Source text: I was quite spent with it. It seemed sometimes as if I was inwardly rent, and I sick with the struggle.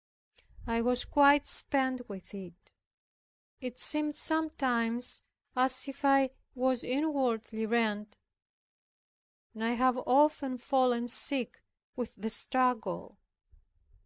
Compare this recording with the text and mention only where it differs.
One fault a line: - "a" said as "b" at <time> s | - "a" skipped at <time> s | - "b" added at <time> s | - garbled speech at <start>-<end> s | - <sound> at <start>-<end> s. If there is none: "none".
- "have often fallen" added at 9.7 s